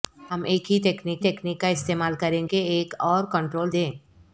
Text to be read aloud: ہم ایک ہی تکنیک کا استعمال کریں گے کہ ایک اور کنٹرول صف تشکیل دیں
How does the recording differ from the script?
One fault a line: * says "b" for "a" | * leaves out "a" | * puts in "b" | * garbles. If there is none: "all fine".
* puts in "تکنیک"
* leaves out "گے"
* leaves out "صف تشکیل"